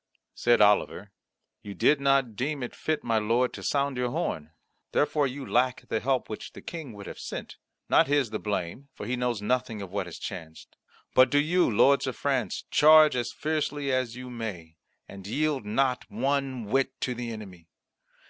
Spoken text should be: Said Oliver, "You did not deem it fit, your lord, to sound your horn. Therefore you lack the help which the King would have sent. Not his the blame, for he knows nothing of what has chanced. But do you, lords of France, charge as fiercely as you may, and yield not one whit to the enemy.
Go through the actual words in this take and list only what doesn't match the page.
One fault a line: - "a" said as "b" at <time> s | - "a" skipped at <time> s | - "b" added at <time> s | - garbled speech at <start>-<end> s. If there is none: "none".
- "your" said as "my" at 3.0 s